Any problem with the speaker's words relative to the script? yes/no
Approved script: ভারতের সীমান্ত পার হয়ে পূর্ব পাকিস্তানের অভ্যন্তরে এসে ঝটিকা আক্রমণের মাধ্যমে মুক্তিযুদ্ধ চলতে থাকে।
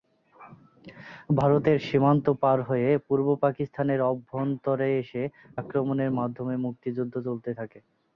yes